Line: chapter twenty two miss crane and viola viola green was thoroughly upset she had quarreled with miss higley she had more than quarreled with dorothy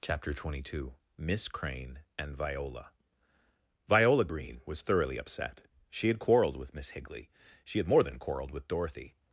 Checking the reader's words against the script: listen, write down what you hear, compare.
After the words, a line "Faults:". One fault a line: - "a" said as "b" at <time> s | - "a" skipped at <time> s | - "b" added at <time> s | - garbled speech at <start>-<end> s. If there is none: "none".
chapter twenty two miss crane and viola viola green was thoroughly upset she had quarreled with miss higley she had more than quarreled with dorothy
Faults:
none